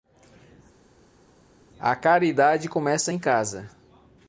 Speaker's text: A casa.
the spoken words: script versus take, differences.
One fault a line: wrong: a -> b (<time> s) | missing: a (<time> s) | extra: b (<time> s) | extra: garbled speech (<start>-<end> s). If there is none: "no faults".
extra: caridade começa em (1.9 s)